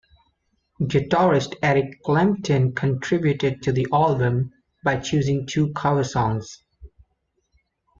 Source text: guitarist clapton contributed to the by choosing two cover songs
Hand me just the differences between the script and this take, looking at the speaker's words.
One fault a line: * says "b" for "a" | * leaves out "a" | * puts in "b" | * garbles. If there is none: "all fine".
* puts in "eric"
* puts in "album"